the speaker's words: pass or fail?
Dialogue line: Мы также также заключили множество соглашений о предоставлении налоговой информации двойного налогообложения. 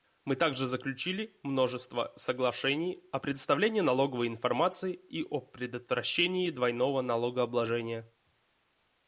fail